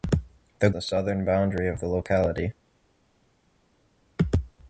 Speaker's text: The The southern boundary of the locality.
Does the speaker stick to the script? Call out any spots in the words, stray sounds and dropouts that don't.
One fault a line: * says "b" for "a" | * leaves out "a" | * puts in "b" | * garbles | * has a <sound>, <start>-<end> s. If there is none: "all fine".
all fine